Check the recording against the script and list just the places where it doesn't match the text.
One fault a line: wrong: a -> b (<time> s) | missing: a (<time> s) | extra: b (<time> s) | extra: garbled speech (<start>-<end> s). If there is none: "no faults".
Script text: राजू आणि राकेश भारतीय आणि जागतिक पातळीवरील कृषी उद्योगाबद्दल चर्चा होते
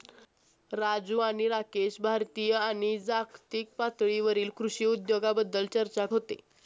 no faults